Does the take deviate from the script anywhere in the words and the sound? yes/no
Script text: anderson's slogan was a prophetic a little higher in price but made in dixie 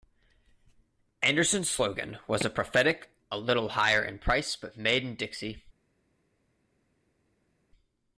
no